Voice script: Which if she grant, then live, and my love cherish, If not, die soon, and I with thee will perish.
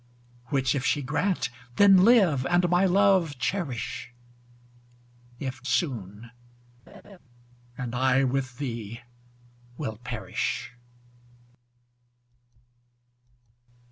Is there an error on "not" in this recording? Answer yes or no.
yes